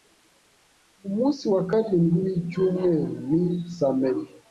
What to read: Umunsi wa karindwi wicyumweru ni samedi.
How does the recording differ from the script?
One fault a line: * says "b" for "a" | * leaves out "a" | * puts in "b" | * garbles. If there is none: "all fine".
all fine